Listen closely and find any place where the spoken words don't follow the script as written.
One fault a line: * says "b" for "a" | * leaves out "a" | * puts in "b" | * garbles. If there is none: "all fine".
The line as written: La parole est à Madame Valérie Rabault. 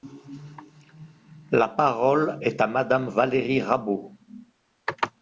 all fine